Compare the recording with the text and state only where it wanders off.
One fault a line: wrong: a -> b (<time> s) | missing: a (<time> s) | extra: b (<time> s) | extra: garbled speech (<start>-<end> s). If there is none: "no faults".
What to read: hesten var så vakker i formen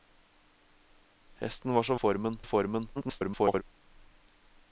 wrong: vakker -> formen (1.9 s)
extra: garbled speech (3.0-3.6 s)